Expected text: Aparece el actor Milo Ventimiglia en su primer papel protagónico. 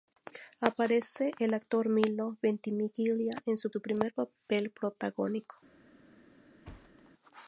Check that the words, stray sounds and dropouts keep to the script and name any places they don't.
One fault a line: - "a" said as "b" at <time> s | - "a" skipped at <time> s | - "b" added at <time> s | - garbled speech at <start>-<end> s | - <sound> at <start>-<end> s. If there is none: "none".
- "su" added at 3.7 s
- thud at 6.6-7.1 s